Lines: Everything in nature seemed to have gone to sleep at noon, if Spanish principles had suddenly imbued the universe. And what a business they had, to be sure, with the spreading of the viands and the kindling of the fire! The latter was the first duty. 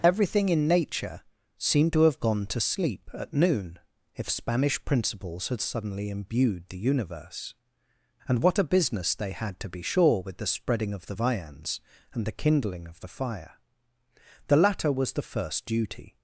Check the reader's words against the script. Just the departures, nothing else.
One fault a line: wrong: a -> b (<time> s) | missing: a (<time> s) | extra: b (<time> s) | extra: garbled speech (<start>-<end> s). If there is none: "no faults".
no faults